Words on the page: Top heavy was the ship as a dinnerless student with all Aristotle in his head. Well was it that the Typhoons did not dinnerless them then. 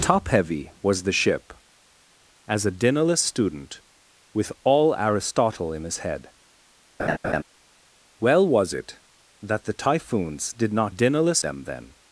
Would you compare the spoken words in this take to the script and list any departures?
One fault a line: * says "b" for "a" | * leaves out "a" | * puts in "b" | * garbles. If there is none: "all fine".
all fine